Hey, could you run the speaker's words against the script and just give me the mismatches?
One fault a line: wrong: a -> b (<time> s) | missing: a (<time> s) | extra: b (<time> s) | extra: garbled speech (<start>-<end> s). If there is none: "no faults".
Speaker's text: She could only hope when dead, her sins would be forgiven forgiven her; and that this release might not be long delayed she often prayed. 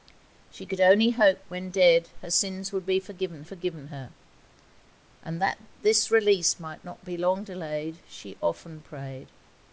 no faults